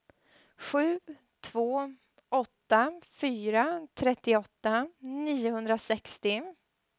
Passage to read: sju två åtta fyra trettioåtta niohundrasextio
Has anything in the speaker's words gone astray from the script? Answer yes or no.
no